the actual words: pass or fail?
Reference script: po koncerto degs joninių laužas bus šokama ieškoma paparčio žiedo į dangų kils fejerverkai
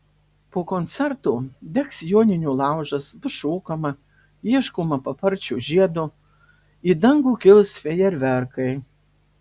pass